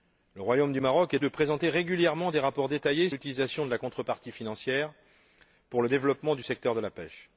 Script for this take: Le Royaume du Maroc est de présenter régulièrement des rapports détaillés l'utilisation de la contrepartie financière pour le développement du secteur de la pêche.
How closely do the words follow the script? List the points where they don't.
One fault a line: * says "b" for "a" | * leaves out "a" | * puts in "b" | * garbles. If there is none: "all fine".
all fine